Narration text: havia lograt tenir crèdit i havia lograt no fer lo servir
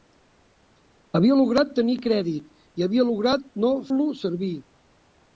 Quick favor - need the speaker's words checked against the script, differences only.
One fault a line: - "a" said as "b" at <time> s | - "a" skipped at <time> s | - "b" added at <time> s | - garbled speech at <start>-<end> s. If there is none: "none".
- "fer" skipped at 3.7 s